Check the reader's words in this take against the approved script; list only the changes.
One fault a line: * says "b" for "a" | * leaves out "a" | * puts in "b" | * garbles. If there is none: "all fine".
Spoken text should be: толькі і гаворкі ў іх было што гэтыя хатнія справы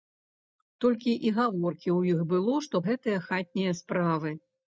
all fine